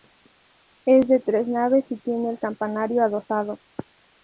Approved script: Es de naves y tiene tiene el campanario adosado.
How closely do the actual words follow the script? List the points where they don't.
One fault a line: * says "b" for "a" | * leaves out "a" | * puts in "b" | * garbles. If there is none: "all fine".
* puts in "tres"
* leaves out "tiene"